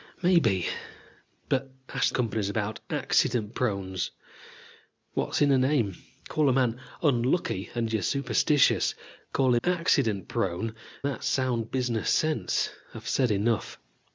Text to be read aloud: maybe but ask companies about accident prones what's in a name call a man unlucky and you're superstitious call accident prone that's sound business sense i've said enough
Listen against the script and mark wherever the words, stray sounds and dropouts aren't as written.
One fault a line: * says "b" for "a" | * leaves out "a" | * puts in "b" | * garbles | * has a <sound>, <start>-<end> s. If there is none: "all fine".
all fine